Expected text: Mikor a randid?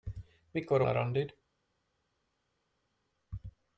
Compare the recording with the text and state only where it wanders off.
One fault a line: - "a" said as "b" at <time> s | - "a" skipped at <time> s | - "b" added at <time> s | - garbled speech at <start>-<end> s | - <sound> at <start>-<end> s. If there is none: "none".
none